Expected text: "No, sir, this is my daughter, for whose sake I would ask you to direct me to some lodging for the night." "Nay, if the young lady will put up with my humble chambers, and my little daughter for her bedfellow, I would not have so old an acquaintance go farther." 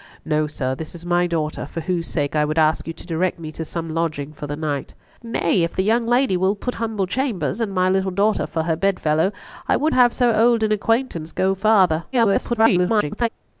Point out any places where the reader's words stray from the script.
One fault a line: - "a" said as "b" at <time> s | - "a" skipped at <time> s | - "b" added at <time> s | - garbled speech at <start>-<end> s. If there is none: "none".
- "up with my" skipped at 6.8 s
- "not" skipped at 9.9 s
- garbled speech at 12.1-13.3 s